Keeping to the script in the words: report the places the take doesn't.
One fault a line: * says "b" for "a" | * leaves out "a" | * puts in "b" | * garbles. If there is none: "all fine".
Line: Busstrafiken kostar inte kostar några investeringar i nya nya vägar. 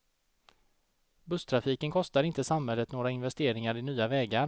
* says "samhället" for "kostar"
* leaves out "nya"